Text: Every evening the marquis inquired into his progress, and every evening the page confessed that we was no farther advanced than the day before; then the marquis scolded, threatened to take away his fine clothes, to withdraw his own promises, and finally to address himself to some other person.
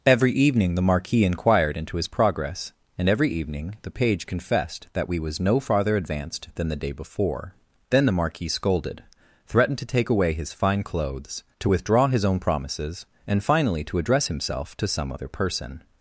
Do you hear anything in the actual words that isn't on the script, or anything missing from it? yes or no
no